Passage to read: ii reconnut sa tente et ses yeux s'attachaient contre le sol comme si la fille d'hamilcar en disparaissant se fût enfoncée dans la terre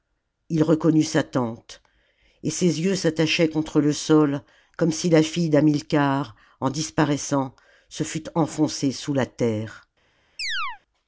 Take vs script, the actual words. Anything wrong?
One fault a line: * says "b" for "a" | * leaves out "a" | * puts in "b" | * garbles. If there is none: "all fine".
* says "sous" for "dans"